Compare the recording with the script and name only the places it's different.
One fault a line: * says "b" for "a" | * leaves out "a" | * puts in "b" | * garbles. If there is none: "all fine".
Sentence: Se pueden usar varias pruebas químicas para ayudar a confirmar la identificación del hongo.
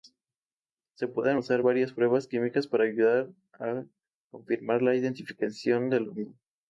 all fine